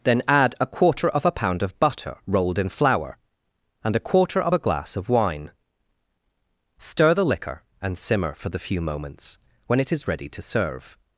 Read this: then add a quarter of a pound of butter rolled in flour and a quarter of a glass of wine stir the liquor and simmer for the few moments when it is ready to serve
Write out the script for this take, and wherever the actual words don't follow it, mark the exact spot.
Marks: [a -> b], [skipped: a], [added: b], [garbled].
then add a quarter of a pound of butter rolled in flour and a quarter of a glass of wine stir the liquor and simmer for the few moments when it is ready to serve